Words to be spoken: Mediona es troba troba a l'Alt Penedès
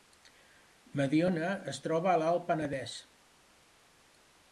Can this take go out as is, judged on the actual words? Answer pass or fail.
fail